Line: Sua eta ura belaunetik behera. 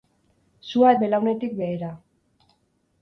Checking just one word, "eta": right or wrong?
wrong